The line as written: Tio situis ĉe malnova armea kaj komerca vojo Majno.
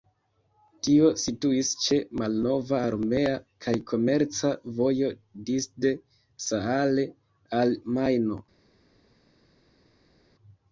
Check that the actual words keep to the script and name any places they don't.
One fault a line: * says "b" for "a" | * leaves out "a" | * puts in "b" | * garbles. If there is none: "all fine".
* puts in "disde Saale al"